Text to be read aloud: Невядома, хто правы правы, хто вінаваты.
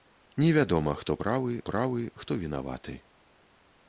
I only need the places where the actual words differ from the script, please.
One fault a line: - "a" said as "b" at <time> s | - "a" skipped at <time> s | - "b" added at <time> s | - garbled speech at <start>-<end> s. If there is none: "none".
none